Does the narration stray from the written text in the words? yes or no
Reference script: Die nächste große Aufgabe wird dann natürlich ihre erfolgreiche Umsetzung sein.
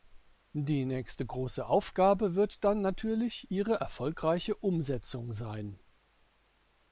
no